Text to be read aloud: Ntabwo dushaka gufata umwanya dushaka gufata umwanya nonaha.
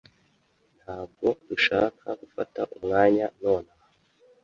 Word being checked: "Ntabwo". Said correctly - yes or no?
yes